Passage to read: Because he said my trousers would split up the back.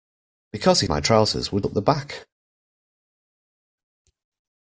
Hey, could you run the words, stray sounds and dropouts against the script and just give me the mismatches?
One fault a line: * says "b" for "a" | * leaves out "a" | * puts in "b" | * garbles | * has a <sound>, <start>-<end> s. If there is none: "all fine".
* leaves out "said"
* leaves out "split"